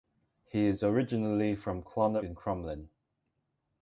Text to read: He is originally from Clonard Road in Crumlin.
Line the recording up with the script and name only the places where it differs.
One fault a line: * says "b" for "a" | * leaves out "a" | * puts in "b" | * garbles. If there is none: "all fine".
* leaves out "Road"